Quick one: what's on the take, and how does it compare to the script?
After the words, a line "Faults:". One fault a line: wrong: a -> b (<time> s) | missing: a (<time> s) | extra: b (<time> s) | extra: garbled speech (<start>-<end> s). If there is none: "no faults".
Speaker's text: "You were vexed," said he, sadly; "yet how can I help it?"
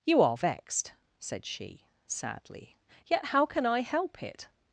"You are vexed," said she, sadly; "yet how can I help it?"
Faults:
wrong: were -> are (0.2 s)
wrong: he -> she (1.4 s)